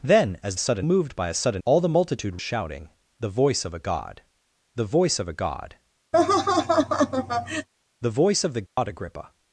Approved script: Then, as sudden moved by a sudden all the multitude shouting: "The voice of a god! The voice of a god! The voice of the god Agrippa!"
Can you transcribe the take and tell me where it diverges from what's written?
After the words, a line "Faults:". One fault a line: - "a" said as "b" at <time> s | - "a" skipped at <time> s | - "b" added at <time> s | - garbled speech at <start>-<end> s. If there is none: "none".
Then, as sudden moved by a sudden all the multitude shouting: "The voice of a god! The voice of a god! The voice of the god Agrippa!"
Faults:
none